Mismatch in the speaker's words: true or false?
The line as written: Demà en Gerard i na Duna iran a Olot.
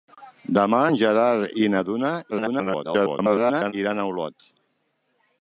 true